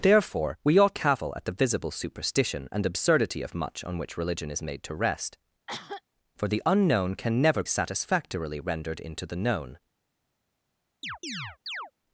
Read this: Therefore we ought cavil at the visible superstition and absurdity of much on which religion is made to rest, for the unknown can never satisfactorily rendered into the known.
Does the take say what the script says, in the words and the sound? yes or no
no